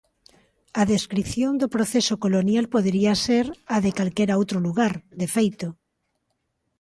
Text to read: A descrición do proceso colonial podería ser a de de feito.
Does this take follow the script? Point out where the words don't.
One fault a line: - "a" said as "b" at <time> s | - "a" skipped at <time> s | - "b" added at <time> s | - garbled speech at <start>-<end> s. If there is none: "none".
- "calquera outro lugar" added at 4.0 s